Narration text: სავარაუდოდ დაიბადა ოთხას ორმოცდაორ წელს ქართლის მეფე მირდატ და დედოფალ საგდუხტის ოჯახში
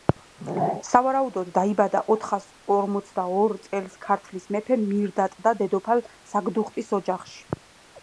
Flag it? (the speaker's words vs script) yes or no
no